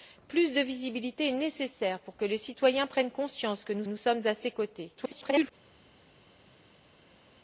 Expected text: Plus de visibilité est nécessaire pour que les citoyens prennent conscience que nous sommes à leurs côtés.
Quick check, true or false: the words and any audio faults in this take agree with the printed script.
false